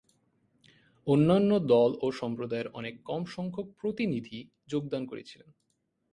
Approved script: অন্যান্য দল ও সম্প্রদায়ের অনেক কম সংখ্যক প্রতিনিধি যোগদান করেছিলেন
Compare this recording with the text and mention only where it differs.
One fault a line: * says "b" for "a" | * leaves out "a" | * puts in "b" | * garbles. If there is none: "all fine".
all fine